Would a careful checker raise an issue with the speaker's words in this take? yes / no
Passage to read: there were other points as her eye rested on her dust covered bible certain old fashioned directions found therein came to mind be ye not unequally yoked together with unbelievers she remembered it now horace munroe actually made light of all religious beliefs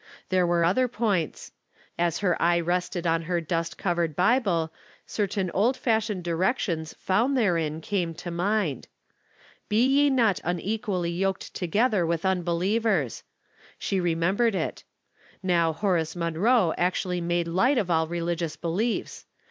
no